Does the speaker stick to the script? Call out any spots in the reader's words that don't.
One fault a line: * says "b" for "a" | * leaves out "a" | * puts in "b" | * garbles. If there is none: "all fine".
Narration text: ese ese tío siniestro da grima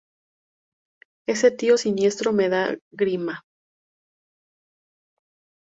* leaves out "ese"
* puts in "me"